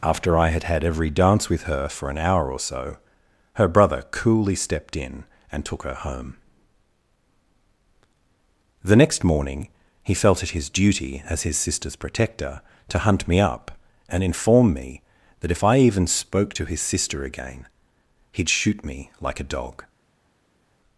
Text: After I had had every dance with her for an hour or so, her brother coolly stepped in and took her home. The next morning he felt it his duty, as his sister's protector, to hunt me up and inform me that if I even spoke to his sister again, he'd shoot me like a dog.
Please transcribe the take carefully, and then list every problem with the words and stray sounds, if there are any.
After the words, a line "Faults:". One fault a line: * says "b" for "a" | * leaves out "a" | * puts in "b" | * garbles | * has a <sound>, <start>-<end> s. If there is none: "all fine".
After I had had every dance with her for an hour or so, her brother coolly stepped in and took her home. The next morning he felt it his duty, as his sister's protector, to hunt me up and inform me that if I even spoke to his sister again, he'd shoot me like a dog.
Faults:
all fine